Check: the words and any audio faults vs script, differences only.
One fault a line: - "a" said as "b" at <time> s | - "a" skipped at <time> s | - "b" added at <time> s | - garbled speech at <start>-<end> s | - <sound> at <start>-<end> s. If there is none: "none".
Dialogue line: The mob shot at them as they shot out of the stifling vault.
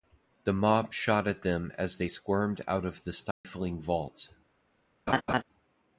- "shot" said as "squirmed" at 2.1 s
- dropout at 3.3-3.4 s
- laugh at 5.1-5.4 s